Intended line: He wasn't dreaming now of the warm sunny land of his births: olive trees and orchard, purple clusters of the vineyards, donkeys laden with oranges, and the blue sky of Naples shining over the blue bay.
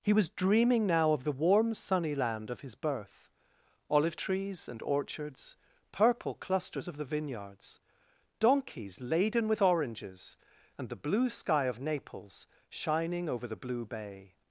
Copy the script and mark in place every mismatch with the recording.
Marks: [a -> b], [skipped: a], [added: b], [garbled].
He [wasn't -> was] dreaming now of the warm sunny land of his [births: -> birth] olive trees and [orchard, -> orchards] purple clusters of the vineyards, donkeys laden with oranges, and the blue sky of Naples shining over the blue bay.